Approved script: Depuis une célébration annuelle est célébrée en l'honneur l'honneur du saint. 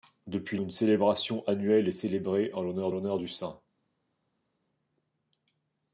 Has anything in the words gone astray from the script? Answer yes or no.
no